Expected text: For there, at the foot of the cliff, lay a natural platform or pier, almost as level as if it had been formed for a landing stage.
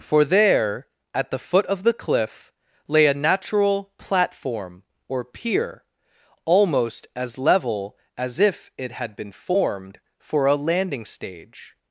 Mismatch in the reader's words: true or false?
false